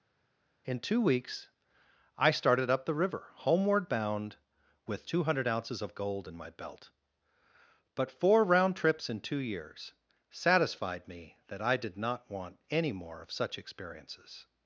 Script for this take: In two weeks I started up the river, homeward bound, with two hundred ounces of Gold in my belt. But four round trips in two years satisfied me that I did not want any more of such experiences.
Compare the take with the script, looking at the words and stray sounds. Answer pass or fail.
pass